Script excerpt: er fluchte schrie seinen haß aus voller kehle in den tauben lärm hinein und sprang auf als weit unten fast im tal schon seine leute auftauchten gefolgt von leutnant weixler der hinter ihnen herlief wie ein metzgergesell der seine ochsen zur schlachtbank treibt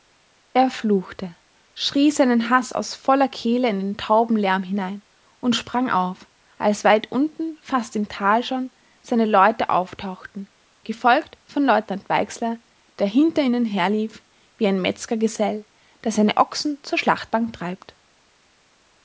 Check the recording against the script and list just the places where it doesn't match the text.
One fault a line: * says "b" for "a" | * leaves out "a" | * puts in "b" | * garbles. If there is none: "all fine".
all fine